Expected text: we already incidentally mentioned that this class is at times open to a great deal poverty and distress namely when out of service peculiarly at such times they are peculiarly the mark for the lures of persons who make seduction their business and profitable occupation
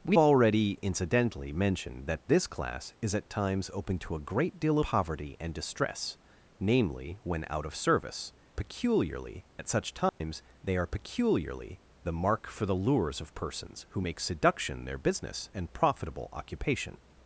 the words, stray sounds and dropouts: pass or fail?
fail